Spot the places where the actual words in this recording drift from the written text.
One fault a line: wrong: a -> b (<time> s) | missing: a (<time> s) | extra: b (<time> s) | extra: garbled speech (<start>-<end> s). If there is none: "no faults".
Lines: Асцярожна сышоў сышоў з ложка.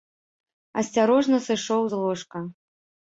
missing: сышоў (1.8 s)